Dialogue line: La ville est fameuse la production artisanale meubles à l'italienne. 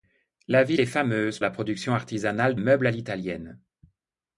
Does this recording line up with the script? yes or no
yes